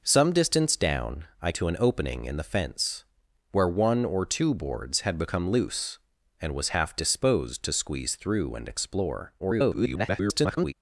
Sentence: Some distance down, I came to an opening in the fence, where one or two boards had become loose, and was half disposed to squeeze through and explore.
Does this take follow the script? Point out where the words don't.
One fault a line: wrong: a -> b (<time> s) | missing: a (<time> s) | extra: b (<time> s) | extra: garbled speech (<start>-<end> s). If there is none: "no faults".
missing: came (1.5 s)
extra: garbled speech (9.4-10.7 s)